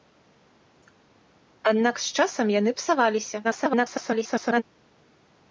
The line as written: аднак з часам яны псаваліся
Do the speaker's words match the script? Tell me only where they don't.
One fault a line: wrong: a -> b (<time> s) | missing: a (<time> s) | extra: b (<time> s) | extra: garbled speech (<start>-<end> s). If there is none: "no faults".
extra: garbled speech (3.4-4.6 s)